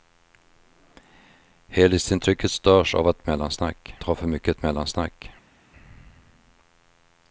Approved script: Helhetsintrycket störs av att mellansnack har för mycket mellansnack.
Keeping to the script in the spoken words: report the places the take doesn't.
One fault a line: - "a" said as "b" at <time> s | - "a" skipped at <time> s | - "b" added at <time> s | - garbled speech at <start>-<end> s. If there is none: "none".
none